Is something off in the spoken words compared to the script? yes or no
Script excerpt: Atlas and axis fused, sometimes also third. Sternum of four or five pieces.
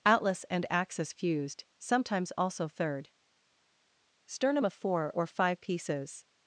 no